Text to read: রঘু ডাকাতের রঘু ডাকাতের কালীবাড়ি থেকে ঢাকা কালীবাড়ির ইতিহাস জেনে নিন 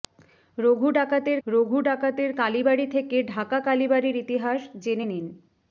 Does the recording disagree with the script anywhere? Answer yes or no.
no